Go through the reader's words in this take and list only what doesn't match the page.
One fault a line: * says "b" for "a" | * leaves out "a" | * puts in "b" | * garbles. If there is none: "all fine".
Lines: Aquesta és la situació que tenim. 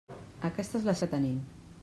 * leaves out "situació"